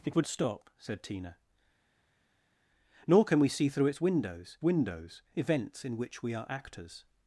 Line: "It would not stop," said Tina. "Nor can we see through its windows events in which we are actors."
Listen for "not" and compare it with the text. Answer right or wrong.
wrong